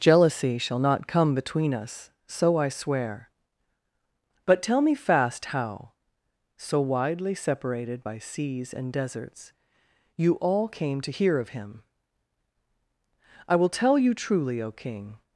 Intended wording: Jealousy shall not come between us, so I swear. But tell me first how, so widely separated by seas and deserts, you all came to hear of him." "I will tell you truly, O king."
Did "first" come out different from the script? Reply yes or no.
yes